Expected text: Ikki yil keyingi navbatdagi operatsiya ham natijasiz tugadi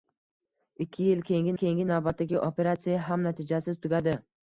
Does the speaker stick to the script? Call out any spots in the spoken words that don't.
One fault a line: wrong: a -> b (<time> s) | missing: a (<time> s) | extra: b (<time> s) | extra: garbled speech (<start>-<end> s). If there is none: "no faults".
extra: keyingi (1.6 s)